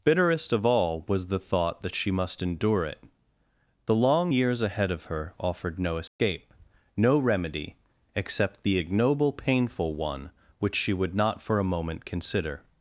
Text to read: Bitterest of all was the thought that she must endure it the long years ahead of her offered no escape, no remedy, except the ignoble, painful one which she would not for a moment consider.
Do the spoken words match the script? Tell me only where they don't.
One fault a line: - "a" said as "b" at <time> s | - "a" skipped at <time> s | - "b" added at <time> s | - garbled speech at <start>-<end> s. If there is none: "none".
none